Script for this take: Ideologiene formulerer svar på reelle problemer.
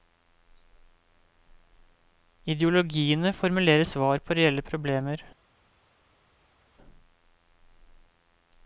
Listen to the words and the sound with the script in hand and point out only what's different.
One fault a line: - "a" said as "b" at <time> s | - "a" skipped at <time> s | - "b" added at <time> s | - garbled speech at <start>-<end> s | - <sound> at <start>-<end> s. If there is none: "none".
none